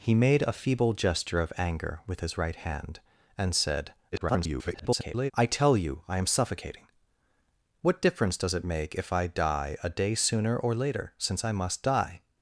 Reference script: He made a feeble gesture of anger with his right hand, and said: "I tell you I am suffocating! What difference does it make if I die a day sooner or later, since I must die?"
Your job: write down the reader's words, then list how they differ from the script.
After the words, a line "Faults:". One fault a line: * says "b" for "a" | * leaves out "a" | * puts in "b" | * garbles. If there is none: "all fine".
He made a feeble gesture of anger with his right hand, and said: [garbled] "I tell you I am suffocating! What difference does it make if I die a day sooner or later, since I must die?"
Faults:
* garbles